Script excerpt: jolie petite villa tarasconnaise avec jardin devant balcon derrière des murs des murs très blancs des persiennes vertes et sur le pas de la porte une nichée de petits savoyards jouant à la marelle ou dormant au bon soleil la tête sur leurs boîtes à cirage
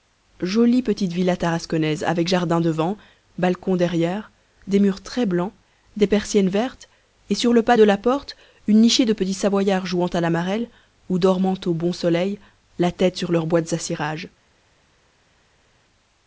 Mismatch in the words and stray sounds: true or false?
true